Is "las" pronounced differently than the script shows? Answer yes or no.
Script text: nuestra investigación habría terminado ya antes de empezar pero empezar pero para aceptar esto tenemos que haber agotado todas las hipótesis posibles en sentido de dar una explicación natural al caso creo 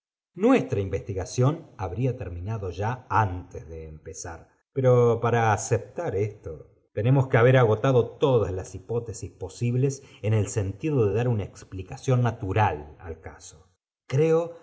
no